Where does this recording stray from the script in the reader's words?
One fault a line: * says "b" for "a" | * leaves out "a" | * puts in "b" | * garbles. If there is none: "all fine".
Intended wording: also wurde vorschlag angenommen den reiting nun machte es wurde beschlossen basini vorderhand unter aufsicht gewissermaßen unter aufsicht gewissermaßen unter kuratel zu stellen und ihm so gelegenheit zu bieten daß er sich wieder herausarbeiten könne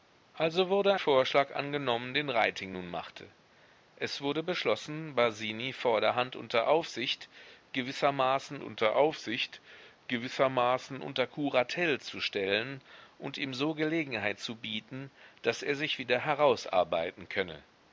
all fine